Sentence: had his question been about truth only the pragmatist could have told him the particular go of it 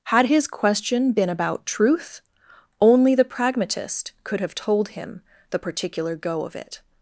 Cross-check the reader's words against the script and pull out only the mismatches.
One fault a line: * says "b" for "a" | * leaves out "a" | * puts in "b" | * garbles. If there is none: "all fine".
all fine